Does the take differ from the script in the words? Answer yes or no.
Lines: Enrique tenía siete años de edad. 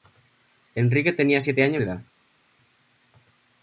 no